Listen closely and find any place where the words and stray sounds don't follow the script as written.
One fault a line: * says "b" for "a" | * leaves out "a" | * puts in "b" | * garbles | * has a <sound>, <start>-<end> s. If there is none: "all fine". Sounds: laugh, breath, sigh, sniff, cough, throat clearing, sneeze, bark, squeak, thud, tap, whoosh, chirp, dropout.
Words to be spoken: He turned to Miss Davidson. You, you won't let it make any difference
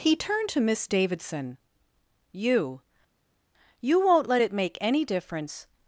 all fine